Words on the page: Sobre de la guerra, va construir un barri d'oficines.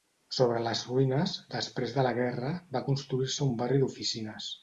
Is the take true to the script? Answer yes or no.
no